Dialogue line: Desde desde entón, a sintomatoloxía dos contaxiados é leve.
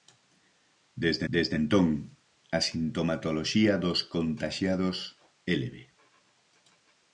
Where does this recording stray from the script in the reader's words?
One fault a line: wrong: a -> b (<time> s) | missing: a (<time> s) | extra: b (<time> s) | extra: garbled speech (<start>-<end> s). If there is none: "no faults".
no faults